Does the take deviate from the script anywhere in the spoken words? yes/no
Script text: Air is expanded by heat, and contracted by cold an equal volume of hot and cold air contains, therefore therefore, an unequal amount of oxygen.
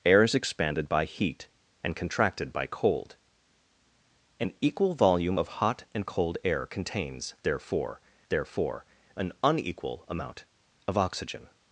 no